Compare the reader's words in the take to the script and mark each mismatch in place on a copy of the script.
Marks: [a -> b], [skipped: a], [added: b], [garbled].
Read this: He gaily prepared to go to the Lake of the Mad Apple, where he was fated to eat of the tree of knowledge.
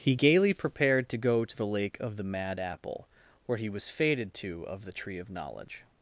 He gaily prepared to go to the Lake of the Mad Apple, where he was fated to [skipped: eat] of the tree of knowledge.